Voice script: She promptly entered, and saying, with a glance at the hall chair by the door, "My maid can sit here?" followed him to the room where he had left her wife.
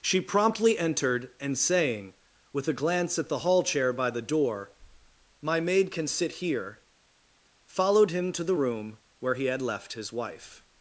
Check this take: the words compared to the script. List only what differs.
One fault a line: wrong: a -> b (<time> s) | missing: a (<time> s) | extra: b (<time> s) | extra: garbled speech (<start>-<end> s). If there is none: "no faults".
wrong: her -> his (9.9 s)